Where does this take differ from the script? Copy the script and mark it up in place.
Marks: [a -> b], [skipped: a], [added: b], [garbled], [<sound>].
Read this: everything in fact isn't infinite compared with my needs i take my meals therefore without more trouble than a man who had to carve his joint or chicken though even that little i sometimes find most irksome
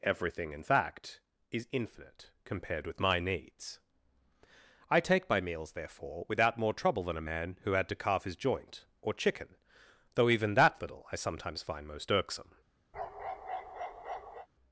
everything in fact [isn't -> is] infinite compared with my needs i take my meals therefore without more trouble than a man who had to carve his joint or chicken though even that little i sometimes find most irksome [bark]